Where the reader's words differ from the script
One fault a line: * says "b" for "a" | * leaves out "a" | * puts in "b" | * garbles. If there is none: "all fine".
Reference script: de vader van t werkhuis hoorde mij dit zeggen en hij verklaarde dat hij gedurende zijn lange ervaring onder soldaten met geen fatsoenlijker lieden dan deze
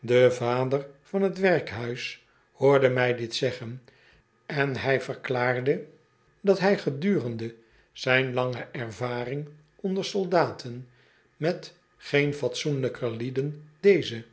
* leaves out "dan"